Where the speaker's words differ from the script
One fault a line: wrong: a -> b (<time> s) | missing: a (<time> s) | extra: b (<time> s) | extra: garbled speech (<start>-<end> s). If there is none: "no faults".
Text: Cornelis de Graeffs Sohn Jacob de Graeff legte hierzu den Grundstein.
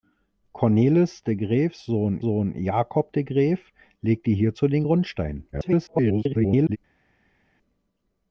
extra: Sohn (2.2 s)
extra: garbled speech (5.5-6.8 s)